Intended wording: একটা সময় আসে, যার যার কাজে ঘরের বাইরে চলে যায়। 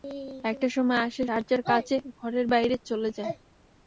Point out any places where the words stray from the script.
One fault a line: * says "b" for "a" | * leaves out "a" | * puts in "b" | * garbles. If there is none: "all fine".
all fine